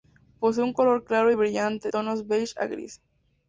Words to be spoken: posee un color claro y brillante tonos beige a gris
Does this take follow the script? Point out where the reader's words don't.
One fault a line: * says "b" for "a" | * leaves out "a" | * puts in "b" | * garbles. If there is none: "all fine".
all fine